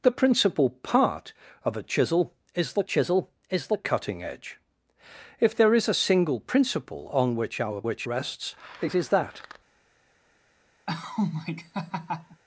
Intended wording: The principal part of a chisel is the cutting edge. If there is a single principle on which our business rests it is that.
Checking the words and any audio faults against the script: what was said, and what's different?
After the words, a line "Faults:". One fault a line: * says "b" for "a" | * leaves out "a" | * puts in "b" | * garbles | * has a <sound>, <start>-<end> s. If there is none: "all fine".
The principal part of a chisel is the chisel is the cutting edge. If there is a single principle on which our which rests it is that.
Faults:
* puts in "chisel is the"
* says "which" for "business"
* has a laugh, 10.9-12.4 s